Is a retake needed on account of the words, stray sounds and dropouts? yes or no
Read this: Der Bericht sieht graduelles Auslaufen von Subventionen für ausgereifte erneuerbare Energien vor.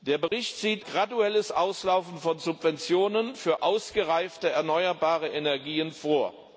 yes